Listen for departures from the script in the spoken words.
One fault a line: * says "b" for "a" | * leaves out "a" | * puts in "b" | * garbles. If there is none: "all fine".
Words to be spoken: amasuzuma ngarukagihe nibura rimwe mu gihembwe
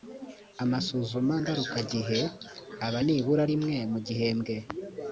* puts in "aba"